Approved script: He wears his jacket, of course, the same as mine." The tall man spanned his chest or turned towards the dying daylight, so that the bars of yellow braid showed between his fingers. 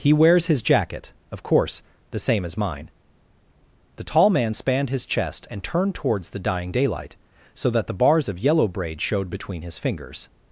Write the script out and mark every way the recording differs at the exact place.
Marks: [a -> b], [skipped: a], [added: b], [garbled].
He wears his jacket, of course, the same as mine." The tall man spanned his chest [or -> and] turned towards the dying daylight, so that the bars of yellow braid showed between his fingers.